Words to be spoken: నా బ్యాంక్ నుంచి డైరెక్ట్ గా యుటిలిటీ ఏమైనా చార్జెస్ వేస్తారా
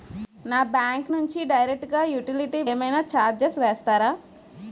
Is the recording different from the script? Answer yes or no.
no